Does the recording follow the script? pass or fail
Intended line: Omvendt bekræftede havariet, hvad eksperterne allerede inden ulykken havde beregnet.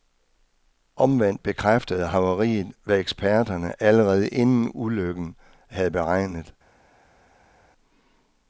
pass